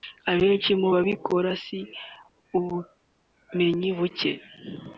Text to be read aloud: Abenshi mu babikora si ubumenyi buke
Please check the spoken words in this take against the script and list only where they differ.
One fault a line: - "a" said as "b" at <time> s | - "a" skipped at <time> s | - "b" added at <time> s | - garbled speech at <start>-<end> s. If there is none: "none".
none